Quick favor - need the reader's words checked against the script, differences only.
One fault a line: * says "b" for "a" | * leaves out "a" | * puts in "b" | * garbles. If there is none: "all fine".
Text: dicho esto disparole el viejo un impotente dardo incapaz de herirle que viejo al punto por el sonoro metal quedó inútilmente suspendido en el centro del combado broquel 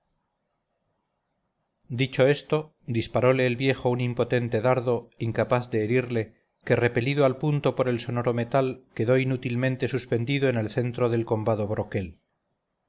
* says "repelido" for "viejo"